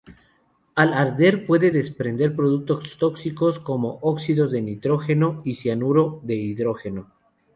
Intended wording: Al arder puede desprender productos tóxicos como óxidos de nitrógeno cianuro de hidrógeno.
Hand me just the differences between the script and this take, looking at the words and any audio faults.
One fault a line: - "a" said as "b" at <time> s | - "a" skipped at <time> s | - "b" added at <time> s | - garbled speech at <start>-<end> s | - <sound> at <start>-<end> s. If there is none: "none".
- "y" added at 5.4 s